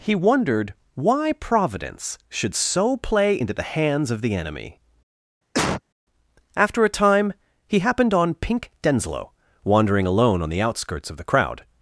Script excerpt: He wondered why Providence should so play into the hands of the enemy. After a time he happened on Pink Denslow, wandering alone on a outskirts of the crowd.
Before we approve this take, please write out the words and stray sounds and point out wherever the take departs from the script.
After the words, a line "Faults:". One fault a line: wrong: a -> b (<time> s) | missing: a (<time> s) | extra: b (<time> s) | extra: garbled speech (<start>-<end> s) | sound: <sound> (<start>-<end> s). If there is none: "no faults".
He wondered why Providence should so play into the hands of the enemy. After a time he happened on Pink Denslow, wandering alone on the outskirts of the crowd.
Faults:
sound: cough (5.5-5.8 s)
wrong: a -> the (10.5 s)